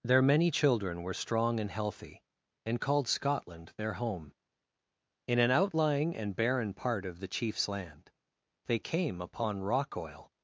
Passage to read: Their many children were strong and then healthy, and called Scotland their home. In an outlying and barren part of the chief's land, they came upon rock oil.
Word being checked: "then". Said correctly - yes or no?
no